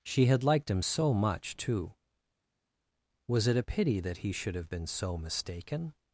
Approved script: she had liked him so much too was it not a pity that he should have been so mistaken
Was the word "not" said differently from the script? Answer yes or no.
yes